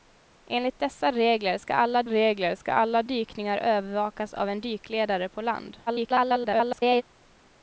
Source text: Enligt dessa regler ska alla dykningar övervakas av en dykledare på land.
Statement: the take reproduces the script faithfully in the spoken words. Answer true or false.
false